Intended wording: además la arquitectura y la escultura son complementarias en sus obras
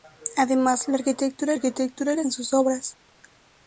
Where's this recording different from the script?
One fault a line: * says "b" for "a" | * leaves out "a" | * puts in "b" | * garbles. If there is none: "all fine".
* puts in "arquitectura"
* leaves out "escultura son complementarias"